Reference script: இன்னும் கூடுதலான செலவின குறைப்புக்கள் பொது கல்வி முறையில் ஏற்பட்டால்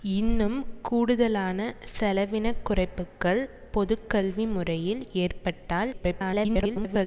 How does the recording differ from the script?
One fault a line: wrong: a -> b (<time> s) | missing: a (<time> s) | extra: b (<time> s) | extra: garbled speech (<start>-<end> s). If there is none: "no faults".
extra: garbled speech (5.9-7.1 s)